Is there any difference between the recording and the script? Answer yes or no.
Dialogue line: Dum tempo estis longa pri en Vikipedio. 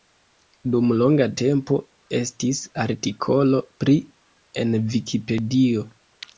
yes